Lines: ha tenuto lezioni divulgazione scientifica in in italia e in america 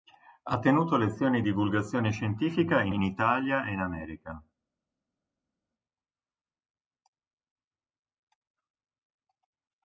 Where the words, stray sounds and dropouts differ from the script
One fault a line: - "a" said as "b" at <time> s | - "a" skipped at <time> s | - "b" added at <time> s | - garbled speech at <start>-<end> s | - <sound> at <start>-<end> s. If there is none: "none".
none